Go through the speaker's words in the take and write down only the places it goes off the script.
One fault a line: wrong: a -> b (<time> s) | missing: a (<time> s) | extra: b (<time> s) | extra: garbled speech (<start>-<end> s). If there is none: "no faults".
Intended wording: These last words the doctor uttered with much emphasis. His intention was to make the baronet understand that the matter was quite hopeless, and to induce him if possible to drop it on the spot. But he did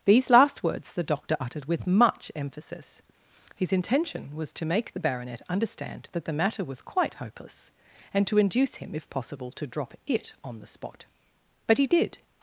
no faults